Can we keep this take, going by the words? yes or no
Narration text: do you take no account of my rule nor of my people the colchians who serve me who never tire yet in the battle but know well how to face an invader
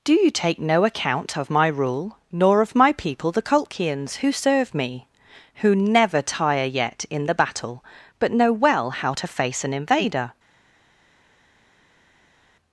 yes